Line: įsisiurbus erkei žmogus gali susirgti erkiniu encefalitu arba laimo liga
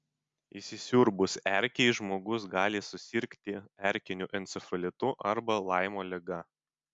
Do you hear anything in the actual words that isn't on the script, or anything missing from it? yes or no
no